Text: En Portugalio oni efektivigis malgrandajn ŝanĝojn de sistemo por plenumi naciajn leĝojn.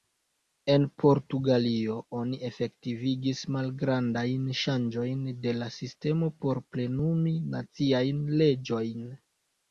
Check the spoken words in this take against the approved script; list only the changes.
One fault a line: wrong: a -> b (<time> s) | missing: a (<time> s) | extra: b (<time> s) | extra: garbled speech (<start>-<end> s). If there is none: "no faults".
extra: la (5.6 s)